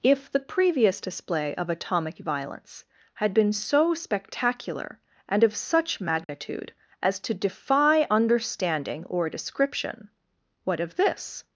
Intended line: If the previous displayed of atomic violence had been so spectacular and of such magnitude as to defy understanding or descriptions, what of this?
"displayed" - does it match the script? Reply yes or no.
no